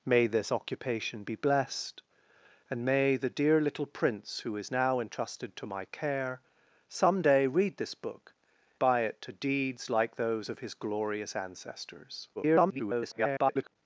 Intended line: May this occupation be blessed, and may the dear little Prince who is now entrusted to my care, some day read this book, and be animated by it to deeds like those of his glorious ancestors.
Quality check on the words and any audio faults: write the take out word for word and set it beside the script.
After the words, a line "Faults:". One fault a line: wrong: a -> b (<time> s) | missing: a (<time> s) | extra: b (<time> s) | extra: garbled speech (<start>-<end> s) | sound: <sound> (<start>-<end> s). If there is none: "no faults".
May this occupation be blessed, and may the dear little Prince who is now entrusted to my care, some day read this book, by it to deeds like those of his glorious ancestors. [garbled]
Faults:
missing: and be animated (8.3 s)
extra: garbled speech (12.3-13.8 s)